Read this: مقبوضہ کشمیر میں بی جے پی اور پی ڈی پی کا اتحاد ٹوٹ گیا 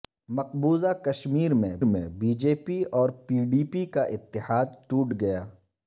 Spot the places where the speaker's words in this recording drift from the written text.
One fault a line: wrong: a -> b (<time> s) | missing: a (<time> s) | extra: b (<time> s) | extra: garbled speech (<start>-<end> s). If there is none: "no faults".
extra: میں (1.8 s)